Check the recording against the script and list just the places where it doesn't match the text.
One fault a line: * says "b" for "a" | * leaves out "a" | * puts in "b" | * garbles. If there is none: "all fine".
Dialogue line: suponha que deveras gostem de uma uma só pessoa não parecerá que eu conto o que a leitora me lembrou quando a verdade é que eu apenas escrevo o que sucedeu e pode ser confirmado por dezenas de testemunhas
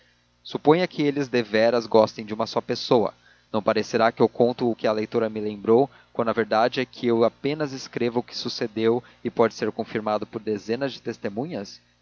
* puts in "eles"
* leaves out "uma"